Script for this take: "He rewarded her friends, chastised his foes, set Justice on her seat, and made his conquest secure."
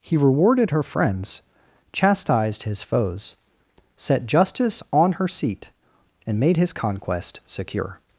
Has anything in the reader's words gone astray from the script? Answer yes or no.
no